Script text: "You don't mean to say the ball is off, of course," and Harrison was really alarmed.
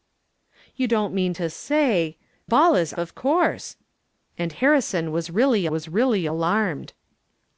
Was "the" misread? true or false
true